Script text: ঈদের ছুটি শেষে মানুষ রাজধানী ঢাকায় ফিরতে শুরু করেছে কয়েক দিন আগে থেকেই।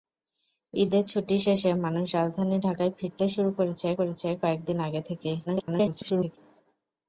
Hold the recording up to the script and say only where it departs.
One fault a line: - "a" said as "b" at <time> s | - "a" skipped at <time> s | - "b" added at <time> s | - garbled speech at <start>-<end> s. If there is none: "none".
- "করেছে" added at 4.0 s
- garbled speech at 5.5-6.4 s